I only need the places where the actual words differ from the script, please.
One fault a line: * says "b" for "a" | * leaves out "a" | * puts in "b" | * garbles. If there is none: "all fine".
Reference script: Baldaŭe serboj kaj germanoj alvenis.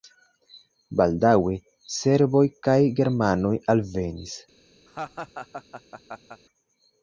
all fine